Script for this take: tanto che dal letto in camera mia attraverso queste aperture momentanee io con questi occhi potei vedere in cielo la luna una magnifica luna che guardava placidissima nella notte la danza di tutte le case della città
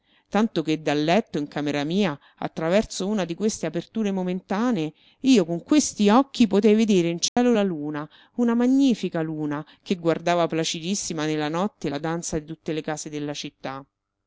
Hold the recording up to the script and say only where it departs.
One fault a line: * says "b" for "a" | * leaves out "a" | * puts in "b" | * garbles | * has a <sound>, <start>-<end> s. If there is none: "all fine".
* puts in "una di"
* has a dropout, 7.3-7.4 s